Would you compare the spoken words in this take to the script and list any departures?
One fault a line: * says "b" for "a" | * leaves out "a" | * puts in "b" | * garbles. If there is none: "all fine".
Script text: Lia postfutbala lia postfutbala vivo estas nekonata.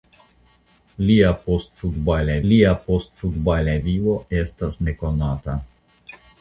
all fine